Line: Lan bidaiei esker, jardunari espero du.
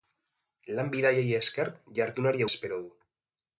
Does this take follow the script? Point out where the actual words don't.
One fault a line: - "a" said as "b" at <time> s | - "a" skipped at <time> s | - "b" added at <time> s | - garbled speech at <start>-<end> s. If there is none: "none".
none